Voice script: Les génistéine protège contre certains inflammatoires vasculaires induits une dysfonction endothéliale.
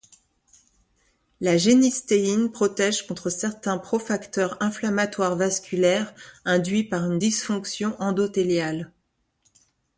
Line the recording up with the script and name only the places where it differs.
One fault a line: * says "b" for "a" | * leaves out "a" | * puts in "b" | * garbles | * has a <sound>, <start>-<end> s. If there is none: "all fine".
* says "La" for "Les"
* puts in "pro facteurs"
* puts in "par"